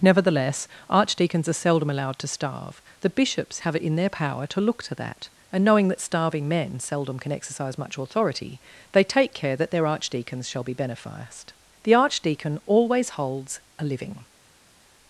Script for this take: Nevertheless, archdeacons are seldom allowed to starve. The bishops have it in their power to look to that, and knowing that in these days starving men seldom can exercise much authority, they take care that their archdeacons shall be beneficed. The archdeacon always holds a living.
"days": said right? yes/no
no